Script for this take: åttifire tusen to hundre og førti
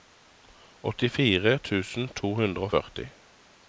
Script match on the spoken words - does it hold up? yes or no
yes